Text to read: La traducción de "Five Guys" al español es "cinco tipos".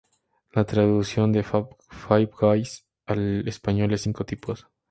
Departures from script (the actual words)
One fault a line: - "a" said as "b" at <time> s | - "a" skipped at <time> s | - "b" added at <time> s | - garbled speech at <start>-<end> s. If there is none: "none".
none